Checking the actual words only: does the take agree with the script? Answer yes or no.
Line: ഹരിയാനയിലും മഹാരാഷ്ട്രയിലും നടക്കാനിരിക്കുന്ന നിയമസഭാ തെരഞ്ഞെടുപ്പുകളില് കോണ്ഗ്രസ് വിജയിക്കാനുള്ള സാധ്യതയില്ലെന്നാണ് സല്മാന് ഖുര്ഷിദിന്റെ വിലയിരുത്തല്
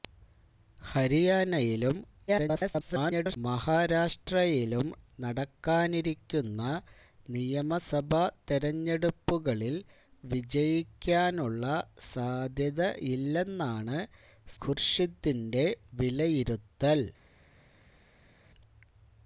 no